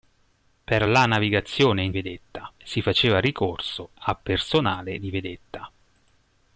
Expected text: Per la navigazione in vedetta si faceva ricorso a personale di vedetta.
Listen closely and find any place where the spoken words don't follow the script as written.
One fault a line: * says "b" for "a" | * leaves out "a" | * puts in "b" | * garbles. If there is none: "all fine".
all fine